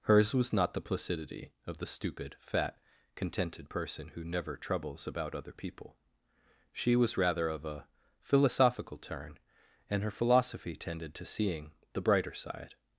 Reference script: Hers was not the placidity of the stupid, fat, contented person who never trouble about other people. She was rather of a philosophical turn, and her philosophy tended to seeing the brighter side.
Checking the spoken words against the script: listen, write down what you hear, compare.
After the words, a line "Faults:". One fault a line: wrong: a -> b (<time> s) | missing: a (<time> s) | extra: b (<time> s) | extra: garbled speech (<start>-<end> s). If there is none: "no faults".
Hers was not the placidity of the stupid, fat, contented person who never troubles about other people. She was rather of a philosophical turn, and her philosophy tended to seeing the brighter side.
Faults:
wrong: trouble -> troubles (4.6 s)